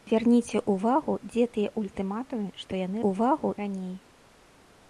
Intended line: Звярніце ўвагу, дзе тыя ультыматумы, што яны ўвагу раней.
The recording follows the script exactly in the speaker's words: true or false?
true